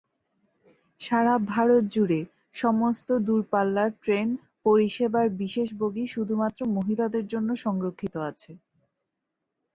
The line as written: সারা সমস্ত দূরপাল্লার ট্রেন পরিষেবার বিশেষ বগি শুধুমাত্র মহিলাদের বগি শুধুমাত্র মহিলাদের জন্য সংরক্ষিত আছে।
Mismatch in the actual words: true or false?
true